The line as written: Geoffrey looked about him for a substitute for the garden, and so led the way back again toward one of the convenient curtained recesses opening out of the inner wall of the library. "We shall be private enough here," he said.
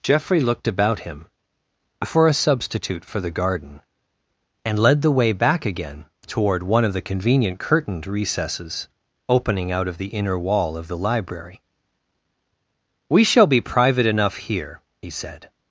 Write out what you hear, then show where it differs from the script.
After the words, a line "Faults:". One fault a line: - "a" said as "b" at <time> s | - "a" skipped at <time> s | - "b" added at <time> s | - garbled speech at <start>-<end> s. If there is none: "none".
Geoffrey looked about him for a substitute for the garden, and led the way back again toward one of the convenient curtained recesses opening out of the inner wall of the library. "We shall be private enough here," he said.
Faults:
- "so" skipped at 4.8 s